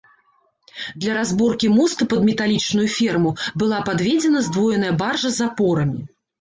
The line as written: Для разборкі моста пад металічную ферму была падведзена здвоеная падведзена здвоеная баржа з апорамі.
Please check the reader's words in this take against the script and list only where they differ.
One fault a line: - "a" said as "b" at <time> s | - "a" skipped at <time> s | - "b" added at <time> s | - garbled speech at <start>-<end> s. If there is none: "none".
- "падведзена здвоеная" skipped at 4.9 s